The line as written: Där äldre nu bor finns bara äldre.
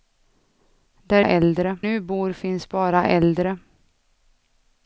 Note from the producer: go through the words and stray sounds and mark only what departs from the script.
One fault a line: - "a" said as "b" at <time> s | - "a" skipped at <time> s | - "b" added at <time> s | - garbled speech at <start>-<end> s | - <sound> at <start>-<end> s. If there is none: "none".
none